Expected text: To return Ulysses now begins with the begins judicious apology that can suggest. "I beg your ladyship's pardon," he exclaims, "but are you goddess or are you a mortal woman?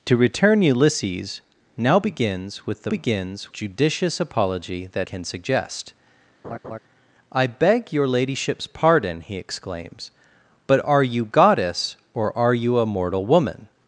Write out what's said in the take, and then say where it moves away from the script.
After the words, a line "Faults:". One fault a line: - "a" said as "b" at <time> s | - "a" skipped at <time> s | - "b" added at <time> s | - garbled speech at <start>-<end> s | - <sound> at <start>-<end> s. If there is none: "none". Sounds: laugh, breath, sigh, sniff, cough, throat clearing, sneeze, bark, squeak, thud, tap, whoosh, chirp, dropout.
To return Ulysses now begins with the begins judicious apology that can suggest. "I beg your ladyship's pardon," he exclaims, "but are you goddess or are you a mortal woman?
Faults:
- laugh at 6.4-6.8 s